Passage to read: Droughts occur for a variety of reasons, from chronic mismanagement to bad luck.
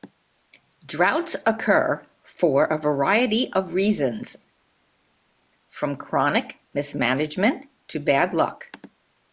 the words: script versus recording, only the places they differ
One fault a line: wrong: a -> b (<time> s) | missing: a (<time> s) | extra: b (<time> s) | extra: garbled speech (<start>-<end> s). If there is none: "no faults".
no faults